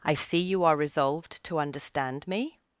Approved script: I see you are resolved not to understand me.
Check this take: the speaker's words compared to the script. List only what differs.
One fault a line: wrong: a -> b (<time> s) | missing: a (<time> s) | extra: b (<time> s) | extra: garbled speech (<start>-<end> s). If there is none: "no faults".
missing: not (1.4 s)